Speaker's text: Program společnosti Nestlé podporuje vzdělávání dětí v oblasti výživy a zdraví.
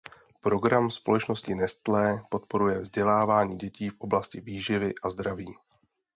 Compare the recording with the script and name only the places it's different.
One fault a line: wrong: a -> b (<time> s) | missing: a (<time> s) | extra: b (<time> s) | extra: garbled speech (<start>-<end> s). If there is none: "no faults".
no faults